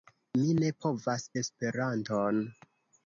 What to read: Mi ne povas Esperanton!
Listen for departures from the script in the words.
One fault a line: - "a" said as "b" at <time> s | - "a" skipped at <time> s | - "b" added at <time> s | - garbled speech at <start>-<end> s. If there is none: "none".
none